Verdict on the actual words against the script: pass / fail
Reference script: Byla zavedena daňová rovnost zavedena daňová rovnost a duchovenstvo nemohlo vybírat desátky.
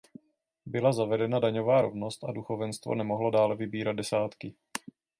fail